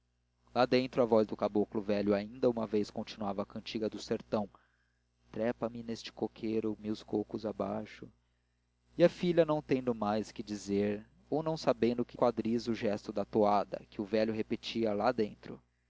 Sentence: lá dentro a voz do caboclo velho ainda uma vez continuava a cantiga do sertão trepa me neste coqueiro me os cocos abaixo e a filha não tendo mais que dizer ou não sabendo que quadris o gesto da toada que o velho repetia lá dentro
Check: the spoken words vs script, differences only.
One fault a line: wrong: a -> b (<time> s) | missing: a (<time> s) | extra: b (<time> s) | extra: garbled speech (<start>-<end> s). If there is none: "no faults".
no faults